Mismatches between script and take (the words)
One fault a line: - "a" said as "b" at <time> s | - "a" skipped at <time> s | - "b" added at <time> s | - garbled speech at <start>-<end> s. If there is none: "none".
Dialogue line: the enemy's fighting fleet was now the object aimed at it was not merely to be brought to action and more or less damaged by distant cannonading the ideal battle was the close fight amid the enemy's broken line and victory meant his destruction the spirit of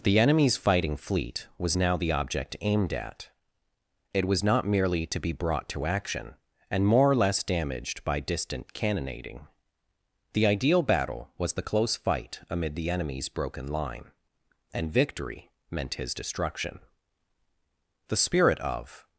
none